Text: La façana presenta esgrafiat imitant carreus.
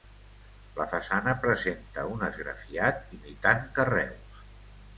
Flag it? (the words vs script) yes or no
yes